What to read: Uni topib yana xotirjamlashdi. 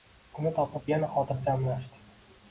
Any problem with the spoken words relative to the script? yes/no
no